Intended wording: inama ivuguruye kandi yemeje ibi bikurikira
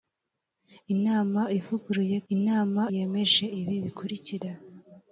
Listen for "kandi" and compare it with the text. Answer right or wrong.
wrong